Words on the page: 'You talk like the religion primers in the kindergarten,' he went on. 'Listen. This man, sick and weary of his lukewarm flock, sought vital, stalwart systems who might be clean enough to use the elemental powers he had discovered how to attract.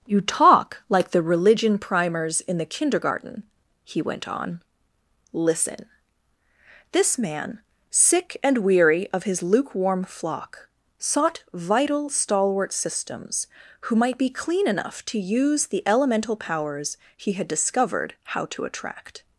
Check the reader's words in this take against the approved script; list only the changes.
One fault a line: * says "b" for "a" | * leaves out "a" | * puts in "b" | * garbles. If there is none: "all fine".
all fine